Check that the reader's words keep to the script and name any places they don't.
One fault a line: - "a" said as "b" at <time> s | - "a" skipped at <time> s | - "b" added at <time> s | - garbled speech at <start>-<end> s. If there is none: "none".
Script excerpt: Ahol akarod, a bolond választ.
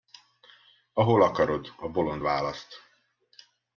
none